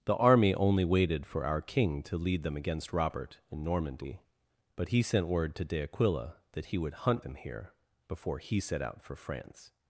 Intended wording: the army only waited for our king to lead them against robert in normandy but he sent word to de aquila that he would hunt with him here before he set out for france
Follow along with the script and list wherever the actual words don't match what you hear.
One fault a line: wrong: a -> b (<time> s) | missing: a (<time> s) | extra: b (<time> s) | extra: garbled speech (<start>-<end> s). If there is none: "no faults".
missing: with (7.2 s)